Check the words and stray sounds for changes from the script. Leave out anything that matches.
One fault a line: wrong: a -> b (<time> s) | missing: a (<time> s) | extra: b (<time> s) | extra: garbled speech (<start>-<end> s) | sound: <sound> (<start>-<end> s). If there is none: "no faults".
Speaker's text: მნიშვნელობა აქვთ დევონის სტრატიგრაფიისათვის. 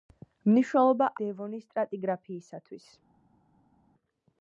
missing: აქვთ (1.1 s)